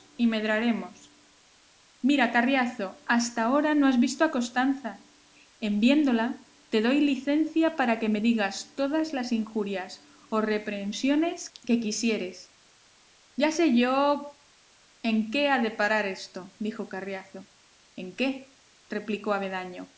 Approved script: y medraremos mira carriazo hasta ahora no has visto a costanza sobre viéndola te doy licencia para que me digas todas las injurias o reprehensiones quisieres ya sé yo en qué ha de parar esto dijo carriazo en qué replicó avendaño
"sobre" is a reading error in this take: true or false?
true